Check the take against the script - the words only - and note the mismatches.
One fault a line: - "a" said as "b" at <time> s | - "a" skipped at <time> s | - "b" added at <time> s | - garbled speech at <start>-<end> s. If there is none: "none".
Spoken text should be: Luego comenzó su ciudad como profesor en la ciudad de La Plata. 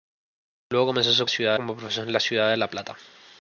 none